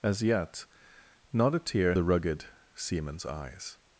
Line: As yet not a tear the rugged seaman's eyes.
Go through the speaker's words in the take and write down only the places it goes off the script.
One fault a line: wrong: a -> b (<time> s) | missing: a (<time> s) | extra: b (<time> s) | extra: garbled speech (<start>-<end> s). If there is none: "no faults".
no faults